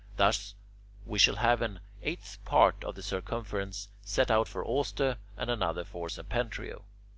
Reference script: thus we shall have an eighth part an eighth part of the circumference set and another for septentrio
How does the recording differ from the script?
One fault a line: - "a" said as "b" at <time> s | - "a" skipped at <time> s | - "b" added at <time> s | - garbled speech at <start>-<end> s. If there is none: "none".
- "an eighth part" skipped at 2.8 s
- "out for auster" added at 4.3 s